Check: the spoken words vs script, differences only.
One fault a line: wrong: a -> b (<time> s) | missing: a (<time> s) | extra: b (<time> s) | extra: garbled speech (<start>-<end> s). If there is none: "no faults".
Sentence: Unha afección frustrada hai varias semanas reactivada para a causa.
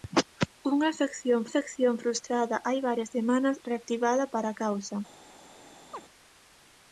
extra: afección (1.5 s)